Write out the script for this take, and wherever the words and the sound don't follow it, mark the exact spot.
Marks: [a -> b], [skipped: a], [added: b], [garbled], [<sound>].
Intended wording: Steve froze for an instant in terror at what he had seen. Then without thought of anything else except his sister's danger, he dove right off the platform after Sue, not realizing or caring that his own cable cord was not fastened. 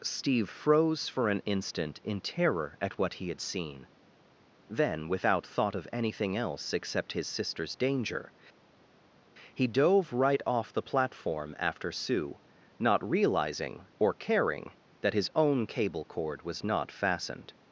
Steve froze for an instant in terror at what he had seen. Then without thought of anything else except his sister's danger, he dove right off the platform after Sue, not realizing or caring that his own cable cord was not fastened.